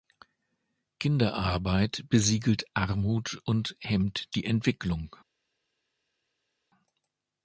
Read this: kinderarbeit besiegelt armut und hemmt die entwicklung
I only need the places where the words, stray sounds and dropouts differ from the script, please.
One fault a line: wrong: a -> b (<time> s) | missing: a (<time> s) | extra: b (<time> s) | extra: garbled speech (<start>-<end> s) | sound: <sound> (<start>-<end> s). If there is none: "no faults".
no faults